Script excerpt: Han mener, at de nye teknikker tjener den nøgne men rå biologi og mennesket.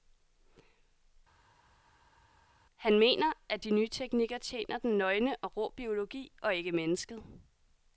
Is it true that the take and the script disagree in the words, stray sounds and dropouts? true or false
true